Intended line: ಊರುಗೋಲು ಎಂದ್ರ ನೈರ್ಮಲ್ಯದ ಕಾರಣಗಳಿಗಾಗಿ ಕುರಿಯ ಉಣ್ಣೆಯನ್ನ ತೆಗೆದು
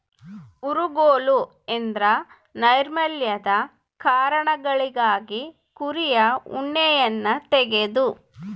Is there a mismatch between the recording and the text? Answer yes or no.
no